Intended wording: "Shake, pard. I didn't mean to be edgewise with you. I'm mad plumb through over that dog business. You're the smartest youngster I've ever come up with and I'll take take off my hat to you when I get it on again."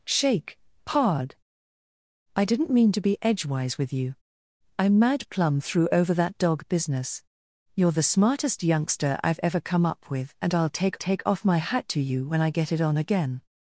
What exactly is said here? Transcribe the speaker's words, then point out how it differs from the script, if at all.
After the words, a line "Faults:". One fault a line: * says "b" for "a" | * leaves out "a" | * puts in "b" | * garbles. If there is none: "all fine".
"Shake, pard. I didn't mean to be edgewise with you. I'm mad plumb through over that dog business. You're the smartest youngster I've ever come up with and I'll take take off my hat to you when I get it on again."
Faults:
all fine